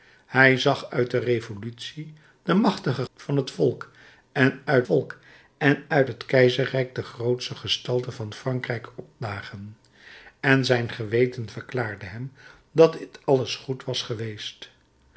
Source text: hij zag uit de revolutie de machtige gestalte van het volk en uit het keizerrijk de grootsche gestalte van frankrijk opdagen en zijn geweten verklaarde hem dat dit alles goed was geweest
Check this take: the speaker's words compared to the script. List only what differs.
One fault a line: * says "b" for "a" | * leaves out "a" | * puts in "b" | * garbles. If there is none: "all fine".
* leaves out "gestalte"
* puts in "volk en uit"